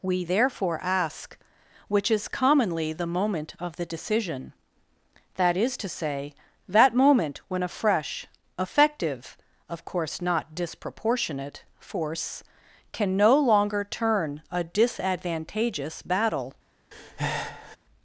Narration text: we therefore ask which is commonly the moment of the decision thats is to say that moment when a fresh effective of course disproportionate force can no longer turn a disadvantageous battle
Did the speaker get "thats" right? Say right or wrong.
wrong